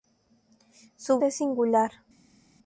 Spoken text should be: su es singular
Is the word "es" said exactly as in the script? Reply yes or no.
yes